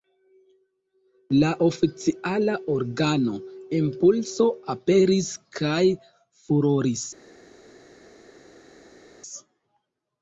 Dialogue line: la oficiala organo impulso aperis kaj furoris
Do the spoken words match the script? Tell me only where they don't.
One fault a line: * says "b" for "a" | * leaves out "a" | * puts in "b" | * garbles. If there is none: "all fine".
all fine